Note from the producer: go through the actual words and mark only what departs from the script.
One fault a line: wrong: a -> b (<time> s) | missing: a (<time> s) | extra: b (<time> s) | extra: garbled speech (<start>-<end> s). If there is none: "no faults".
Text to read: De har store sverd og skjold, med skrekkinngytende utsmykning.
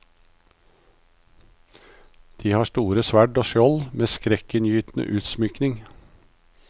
no faults